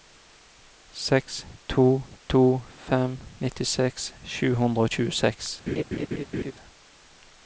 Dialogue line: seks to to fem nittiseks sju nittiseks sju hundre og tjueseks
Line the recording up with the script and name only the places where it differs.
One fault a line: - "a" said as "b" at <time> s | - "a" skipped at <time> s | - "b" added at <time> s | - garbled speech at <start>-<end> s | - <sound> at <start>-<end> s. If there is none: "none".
- "nittiseks sju" skipped at 4.5 s
- laugh at 5.7-6.5 s